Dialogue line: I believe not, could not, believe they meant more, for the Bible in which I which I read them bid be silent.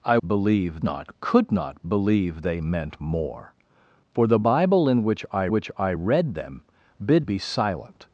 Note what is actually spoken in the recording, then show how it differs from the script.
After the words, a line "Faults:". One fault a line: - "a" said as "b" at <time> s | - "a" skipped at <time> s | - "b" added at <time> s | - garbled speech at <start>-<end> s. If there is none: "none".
I believe not, could not, believe they meant more, for the Bible in which I which I read them bid be silent.
Faults:
none